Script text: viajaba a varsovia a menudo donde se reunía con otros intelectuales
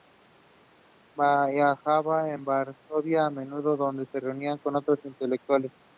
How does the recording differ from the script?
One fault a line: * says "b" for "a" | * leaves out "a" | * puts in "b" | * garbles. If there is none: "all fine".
all fine